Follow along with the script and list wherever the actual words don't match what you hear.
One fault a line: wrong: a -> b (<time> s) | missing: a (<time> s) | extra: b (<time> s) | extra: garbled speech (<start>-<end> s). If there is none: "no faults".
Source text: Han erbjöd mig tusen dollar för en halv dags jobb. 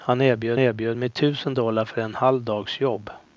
extra: erbjöd (0.6 s)